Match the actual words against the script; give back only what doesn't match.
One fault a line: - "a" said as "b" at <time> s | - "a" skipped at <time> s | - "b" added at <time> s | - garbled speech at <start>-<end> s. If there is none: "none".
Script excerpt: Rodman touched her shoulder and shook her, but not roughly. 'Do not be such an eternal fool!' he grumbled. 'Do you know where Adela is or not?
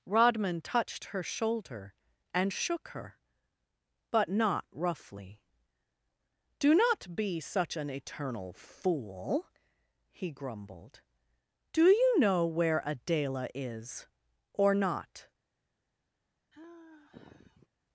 none